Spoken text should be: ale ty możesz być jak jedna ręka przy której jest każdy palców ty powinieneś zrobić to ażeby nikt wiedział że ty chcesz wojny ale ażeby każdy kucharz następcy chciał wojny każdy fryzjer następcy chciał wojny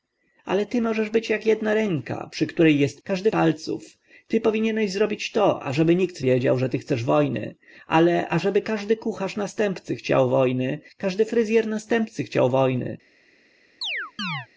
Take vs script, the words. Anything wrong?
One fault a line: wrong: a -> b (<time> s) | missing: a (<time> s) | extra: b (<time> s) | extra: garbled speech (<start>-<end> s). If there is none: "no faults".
no faults